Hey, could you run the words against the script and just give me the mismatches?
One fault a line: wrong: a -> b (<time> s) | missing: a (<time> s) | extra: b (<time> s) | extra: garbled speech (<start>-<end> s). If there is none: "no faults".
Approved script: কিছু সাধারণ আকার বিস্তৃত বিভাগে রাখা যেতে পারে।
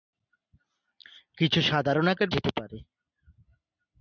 missing: বিস্তৃত বিভাগে রাখা (2.3 s)